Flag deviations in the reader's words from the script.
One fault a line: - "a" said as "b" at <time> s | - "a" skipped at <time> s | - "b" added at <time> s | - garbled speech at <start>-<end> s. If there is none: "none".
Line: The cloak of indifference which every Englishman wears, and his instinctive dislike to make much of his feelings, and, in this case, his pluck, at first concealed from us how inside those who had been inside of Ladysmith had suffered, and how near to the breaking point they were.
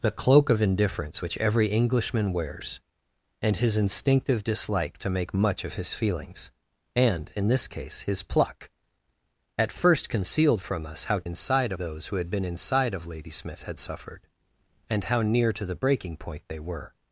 none